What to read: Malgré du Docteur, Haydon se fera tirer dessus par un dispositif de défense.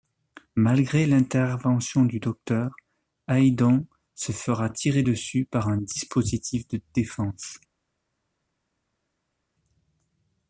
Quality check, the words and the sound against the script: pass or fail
fail